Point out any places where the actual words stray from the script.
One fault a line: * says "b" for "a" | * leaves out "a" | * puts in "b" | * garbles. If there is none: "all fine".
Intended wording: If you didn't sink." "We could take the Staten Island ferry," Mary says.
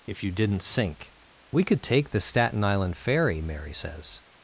all fine